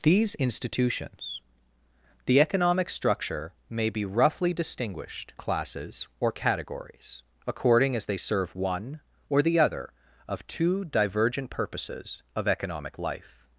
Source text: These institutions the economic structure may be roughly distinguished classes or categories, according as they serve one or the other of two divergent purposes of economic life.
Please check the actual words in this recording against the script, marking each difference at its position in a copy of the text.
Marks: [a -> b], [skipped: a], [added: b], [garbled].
These institutions the economic structure may be roughly distinguished classes or categories, according as they serve one or the other of two divergent purposes of economic life.